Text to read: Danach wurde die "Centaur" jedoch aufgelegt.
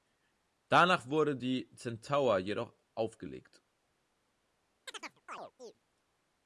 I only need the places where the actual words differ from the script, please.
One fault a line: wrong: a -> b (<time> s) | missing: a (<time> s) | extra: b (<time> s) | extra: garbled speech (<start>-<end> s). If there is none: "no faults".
no faults